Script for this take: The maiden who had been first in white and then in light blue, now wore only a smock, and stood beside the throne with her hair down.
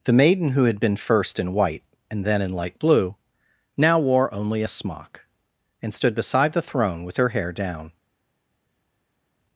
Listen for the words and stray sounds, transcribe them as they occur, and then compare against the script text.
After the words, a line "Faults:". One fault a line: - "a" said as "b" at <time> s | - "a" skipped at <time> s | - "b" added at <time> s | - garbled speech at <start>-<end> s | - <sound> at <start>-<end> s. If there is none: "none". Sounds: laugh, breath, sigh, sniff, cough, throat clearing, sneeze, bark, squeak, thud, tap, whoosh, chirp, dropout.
The maiden who had been first in white and then in light blue, now wore only a smock, and stood beside the throne with her hair down.
Faults:
none